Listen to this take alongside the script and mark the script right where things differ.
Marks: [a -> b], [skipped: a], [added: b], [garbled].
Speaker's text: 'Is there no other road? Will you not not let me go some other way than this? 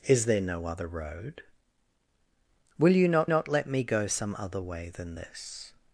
'Is there no other road? Will you not not let me go some other way than this?